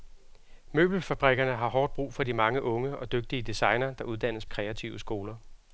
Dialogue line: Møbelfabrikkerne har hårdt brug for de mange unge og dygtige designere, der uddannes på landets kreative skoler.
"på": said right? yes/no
no